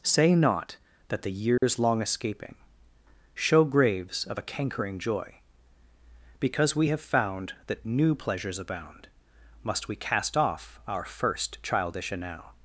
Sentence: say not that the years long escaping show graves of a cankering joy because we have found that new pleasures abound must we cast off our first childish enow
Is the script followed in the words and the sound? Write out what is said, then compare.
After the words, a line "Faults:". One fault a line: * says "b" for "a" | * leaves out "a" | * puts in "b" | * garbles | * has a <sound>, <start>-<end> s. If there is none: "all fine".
say not that the years long escaping show graves of a cankering joy because we have found that new pleasures abound must we cast off our first childish enow
Faults:
* has a dropout, 1.6-1.6 s